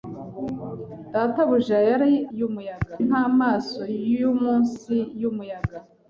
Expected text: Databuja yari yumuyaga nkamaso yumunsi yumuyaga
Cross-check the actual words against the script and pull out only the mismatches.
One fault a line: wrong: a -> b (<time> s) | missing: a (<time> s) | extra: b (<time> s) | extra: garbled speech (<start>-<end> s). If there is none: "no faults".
no faults